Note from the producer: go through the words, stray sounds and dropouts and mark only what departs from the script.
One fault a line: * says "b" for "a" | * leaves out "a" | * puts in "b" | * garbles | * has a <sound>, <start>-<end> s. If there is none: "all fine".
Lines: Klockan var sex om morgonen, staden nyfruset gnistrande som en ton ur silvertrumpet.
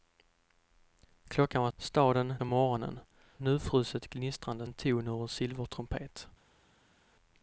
* says "staden" for "sex"
* leaves out "staden"
* leaves out "som"